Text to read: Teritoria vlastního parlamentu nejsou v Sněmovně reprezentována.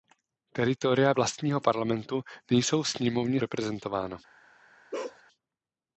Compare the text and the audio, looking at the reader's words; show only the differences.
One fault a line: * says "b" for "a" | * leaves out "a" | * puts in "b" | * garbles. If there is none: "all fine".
all fine